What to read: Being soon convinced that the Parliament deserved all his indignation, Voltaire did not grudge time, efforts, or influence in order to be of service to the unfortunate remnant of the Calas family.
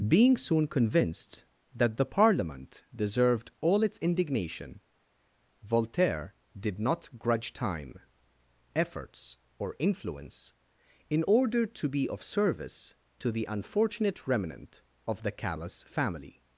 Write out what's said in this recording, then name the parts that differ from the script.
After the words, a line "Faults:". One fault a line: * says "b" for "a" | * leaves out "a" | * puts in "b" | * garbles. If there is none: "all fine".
Being soon convinced that the Parliament deserved all its indignation, Voltaire did not grudge time, efforts, or influence in order to be of service to the unfortunate remnant of the Calas family.
Faults:
* says "its" for "his"